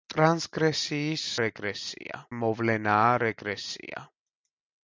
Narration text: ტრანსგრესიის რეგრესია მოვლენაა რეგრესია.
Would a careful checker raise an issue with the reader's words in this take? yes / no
no